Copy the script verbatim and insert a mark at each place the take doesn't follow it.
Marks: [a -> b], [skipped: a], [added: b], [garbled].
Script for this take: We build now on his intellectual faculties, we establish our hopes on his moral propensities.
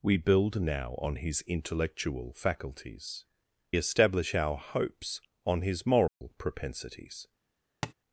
We build now on his intellectual faculties, [skipped: we] establish our hopes on his moral propensities.